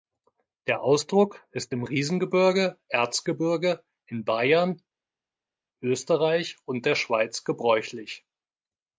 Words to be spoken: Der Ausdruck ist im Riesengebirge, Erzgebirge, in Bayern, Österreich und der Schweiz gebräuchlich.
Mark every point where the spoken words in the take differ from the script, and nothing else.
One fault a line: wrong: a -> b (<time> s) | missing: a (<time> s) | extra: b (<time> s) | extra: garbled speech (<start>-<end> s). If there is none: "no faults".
no faults